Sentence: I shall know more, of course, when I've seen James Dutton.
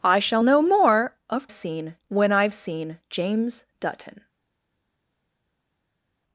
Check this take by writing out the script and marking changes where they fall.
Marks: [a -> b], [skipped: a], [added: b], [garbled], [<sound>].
I shall know more, of [course, -> seen] when I've seen James Dutton.